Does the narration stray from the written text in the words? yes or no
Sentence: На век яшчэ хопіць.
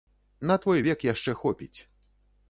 yes